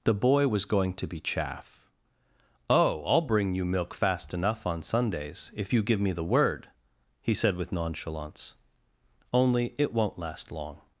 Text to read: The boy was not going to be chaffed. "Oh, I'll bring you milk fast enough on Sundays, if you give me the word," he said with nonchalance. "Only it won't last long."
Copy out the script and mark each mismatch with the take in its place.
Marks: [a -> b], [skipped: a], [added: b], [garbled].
The boy was [skipped: not] going to be [chaffed. -> chaff] "Oh, I'll bring you milk fast enough on Sundays, if you give me the word," he said with nonchalance. "Only it won't last long."